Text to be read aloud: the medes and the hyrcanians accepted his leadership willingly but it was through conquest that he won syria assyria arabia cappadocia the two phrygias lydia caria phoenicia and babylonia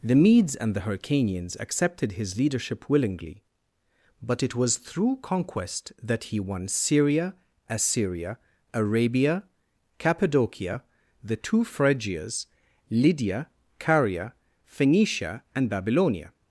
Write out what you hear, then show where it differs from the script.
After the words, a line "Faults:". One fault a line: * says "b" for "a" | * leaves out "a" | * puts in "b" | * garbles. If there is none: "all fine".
the medes and the hyrcanians accepted his leadership willingly but it was through conquest that he won syria assyria arabia cappadocia the two phrygias lydia caria phoenicia and babylonia
Faults:
all fine